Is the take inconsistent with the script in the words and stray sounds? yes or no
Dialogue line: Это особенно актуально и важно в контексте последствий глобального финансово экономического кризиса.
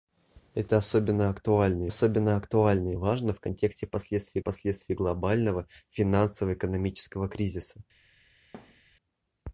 yes